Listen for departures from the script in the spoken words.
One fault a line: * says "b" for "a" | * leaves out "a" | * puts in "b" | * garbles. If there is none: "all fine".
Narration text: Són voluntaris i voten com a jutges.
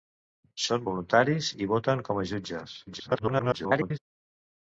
* garbles